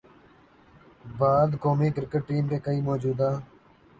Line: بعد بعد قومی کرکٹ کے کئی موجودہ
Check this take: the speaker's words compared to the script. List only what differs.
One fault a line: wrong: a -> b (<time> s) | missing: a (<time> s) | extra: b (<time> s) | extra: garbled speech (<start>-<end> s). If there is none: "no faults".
missing: بعد (1.5 s)
extra: ٹیم (2.3 s)